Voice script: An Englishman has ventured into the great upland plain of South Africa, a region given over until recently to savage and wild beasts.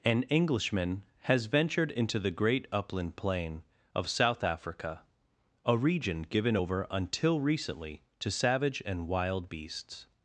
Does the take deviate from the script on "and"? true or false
false